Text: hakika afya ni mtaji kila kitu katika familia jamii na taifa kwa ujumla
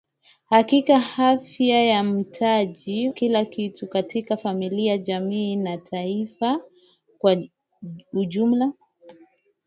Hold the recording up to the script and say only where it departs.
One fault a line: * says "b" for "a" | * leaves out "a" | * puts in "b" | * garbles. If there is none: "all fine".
all fine